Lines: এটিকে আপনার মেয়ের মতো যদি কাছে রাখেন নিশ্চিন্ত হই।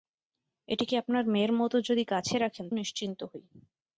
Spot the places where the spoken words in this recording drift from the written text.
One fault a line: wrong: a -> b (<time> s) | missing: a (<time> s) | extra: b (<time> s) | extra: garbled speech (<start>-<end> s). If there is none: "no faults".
no faults